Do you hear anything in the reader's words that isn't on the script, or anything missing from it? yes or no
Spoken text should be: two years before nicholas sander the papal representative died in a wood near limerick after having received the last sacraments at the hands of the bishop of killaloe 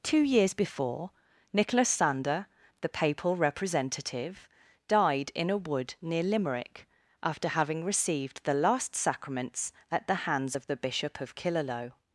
no